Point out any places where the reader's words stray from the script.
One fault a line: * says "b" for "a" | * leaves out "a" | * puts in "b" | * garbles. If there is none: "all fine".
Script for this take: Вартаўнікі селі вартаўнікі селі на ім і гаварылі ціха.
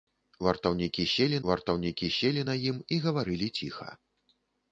all fine